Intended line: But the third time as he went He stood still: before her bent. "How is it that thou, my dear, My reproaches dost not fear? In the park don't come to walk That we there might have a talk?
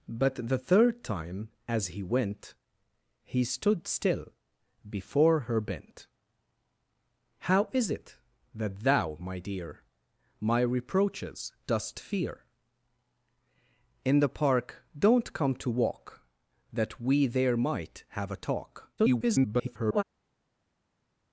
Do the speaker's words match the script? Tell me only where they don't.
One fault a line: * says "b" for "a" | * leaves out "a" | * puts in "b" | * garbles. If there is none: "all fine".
* leaves out "not"
* garbles